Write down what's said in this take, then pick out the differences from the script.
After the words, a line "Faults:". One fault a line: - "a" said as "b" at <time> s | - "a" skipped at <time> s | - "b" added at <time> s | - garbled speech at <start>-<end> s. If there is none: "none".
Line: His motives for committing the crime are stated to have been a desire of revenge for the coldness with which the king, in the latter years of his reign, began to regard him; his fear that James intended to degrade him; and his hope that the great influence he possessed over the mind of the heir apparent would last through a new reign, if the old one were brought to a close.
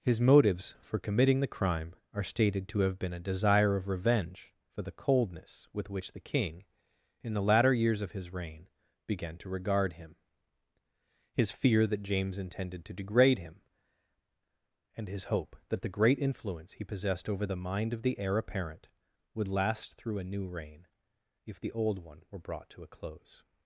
His motives for committing the crime are stated to have been a desire of revenge for the coldness with which the king, in the latter years of his reign, began to regard him; his fear that James intended to degrade him; and his hope that the great influence he possessed over the mind of the heir apparent would last through a new reign, if the old one were brought to a close.
Faults:
none